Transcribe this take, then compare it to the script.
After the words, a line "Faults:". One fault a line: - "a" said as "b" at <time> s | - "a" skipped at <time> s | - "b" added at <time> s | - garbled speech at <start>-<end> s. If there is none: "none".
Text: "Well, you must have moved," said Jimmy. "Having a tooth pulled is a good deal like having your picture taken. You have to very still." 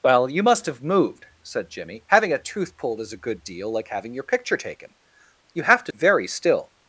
"Well, you must have moved," said Jimmy. "Having a tooth pulled is a good deal like having your picture taken. You have to very still."
Faults:
none